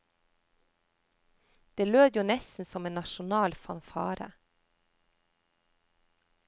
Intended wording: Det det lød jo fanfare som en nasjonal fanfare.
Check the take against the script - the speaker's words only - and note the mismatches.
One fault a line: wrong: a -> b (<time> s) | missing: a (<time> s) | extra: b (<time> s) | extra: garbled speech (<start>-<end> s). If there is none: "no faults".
missing: det (1.9 s)
wrong: fanfare -> nesten (2.2 s)